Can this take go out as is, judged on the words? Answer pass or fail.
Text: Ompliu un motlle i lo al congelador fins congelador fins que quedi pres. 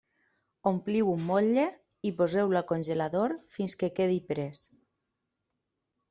fail